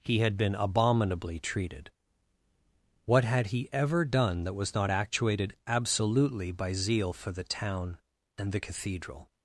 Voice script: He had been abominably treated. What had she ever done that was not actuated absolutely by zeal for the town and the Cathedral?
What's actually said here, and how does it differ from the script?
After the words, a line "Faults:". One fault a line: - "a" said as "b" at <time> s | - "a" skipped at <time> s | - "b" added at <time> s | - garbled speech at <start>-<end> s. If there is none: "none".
He had been abominably treated. What had he ever done that was not actuated absolutely by zeal for the town and the Cathedral?
Faults:
- "she" said as "he" at 3.5 s